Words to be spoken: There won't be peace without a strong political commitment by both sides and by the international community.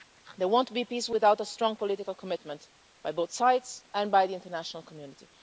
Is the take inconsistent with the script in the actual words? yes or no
no